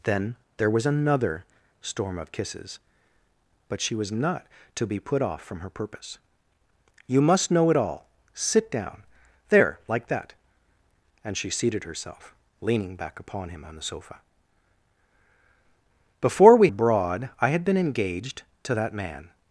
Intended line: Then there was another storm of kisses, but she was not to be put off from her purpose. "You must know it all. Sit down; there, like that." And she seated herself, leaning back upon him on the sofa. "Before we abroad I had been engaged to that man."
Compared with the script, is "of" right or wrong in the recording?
right